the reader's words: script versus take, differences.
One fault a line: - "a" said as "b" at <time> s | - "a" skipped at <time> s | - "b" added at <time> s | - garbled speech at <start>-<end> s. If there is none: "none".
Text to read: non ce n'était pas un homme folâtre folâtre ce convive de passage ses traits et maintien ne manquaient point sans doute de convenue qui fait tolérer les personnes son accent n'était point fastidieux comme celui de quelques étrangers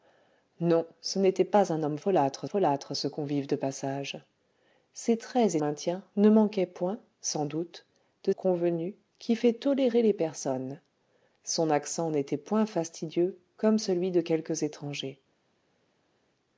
none